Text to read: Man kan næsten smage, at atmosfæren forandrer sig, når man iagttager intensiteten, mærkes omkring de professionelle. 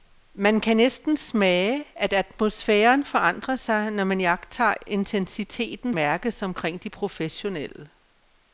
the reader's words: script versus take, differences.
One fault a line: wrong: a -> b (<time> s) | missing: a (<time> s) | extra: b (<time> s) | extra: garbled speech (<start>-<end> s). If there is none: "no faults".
no faults